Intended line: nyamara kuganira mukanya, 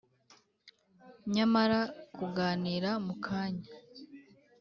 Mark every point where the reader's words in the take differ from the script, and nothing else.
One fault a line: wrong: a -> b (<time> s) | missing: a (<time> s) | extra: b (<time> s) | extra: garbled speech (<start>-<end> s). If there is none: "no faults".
no faults